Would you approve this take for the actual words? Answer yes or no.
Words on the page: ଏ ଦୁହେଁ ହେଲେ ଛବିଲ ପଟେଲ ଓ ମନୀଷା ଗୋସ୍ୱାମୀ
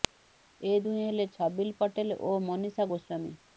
yes